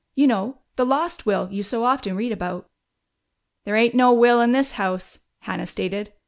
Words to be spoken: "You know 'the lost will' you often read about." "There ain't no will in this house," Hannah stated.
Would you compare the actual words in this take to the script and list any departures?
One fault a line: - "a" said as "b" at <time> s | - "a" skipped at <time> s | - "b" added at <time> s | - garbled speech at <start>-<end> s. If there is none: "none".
- "so" added at 1.6 s